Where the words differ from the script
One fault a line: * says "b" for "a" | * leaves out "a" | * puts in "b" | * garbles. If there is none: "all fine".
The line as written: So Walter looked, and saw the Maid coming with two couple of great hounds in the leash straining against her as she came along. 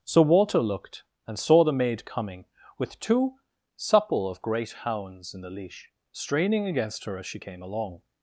* says "supple" for "couple"